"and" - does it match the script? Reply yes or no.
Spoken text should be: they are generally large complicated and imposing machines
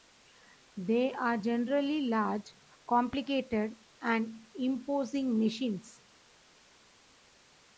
yes